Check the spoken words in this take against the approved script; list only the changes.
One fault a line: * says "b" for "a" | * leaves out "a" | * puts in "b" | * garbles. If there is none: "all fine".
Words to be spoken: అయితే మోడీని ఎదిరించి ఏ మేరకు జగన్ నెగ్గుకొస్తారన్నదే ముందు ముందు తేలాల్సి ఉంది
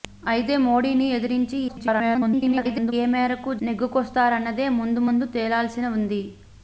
* garbles
* leaves out "జగన్"